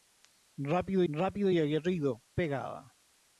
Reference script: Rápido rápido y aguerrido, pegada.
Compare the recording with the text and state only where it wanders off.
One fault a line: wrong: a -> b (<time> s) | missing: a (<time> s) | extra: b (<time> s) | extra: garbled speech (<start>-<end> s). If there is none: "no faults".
no faults